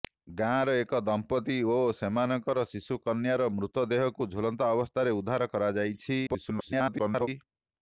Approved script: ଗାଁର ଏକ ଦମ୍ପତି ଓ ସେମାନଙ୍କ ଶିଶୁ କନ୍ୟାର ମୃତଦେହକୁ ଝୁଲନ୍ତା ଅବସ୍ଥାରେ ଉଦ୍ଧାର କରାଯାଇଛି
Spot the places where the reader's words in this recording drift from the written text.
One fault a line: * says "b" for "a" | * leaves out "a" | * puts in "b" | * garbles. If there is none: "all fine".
* garbles